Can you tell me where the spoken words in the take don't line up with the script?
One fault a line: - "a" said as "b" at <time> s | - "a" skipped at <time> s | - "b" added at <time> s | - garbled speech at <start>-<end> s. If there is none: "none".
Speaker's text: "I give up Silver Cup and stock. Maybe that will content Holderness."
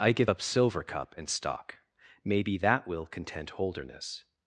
none